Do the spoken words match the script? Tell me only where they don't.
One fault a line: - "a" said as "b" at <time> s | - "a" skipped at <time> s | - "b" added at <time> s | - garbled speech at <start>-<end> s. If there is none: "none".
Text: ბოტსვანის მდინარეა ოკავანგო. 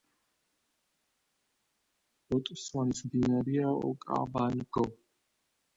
none